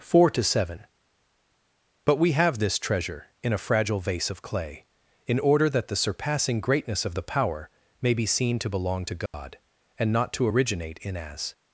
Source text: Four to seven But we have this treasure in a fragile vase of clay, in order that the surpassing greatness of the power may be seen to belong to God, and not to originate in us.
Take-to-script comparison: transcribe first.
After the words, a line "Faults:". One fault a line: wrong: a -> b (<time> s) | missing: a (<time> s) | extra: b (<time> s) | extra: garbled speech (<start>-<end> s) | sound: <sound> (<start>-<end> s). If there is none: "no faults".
Four to seven But we have this treasure in a fragile vase of clay, in order that the surpassing greatness of the power may be seen to belong to God, and not to originate in as.
Faults:
sound: dropout (9.3-9.3 s)
wrong: us -> as (11.1 s)